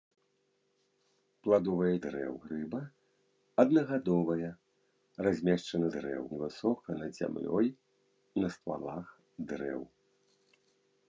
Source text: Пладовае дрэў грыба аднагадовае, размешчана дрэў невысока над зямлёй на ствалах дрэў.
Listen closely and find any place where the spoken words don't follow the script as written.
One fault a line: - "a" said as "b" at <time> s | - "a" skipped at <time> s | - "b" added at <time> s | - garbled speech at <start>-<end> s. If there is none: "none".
none